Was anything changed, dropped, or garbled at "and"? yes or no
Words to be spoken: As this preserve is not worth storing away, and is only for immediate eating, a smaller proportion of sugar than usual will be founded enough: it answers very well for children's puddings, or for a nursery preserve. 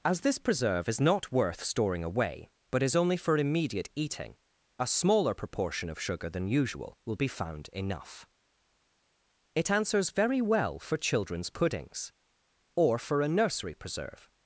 yes